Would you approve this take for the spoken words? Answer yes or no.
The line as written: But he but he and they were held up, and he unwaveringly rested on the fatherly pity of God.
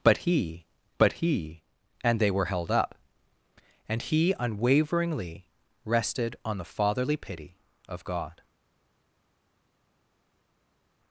yes